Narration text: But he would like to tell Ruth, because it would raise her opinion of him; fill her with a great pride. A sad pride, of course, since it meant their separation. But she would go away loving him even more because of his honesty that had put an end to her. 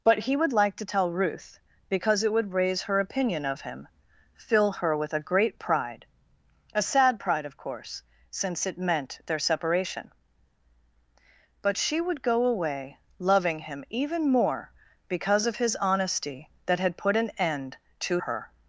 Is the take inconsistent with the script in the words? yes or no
no